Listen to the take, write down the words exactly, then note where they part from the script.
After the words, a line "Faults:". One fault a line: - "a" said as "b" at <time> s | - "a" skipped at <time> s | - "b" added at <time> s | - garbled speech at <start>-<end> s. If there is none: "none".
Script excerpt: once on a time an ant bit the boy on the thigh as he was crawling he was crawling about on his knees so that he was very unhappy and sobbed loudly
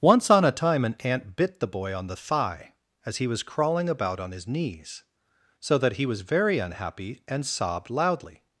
once on a time an ant bit the boy on the thigh as he was crawling about on his knees so that he was very unhappy and sobbed loudly
Faults:
- "he was crawling" skipped at 3.9 s